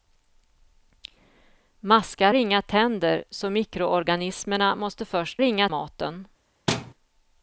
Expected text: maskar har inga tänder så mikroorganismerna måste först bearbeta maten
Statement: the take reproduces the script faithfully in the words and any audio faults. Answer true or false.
false